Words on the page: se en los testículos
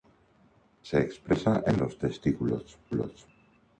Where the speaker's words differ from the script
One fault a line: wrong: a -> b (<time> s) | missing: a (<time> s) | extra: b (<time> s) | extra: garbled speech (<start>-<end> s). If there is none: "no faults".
extra: expresa (1.0 s)